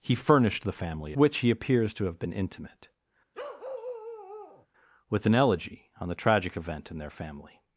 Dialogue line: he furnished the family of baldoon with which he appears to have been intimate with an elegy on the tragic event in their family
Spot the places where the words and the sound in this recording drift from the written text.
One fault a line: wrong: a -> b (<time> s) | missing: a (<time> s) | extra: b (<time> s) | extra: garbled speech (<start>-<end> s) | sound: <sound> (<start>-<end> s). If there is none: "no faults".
missing: of baldoon with (1.1 s)
sound: bark (3.3-4.7 s)